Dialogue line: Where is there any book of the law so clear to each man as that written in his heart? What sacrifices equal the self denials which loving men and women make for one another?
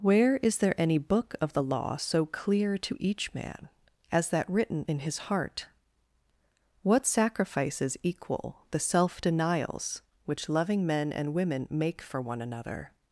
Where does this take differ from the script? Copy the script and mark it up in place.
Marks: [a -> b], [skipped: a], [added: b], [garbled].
Where is there any book of the law so clear to each man as that written in his heart? What sacrifices equal the self denials which loving men and women make for one another?